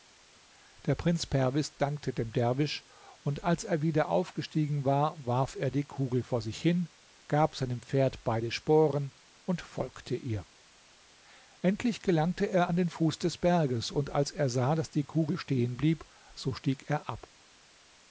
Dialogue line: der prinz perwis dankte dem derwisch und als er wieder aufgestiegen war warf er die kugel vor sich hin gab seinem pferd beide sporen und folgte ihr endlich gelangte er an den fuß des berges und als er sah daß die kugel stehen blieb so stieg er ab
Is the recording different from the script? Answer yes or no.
no